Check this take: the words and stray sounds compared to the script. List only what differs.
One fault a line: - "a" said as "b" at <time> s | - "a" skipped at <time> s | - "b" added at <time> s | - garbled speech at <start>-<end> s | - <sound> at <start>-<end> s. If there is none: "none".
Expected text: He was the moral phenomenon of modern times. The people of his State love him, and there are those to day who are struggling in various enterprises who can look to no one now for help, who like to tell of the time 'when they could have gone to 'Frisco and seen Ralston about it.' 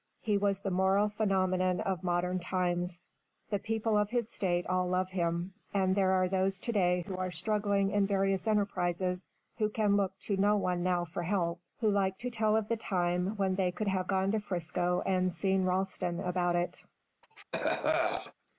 - "all" added at 4.7 s
- cough at 17.2-18.3 s